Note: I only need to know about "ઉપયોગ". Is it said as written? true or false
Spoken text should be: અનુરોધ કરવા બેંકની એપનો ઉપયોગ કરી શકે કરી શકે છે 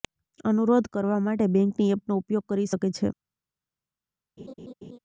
true